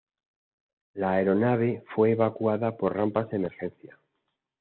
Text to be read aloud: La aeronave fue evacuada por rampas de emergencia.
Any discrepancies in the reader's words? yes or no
no